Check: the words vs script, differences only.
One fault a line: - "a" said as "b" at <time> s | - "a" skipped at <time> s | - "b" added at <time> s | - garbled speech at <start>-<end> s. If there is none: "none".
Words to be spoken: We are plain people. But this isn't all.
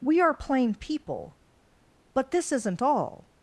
none